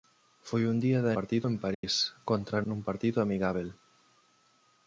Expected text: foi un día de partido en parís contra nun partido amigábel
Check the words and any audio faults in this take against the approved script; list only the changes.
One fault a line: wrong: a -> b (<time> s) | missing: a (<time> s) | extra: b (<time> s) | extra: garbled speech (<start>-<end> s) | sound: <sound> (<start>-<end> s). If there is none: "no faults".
sound: dropout (1.7-1.8 s)